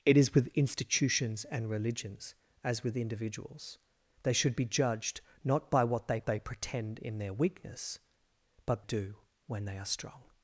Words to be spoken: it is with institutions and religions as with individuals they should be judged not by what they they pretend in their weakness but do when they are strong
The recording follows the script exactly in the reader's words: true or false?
true